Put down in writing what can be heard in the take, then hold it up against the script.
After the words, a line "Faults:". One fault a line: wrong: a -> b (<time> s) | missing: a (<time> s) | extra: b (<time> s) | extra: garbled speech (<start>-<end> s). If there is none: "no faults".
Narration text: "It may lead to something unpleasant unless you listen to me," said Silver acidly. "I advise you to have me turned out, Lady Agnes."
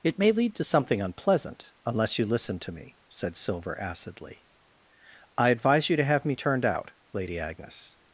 "It may lead to something unpleasant unless you listen to me," said Silver acidly. "I advise you to have me turned out, Lady Agnes."
Faults:
no faults